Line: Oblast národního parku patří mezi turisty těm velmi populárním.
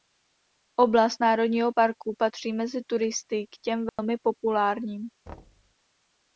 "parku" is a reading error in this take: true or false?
false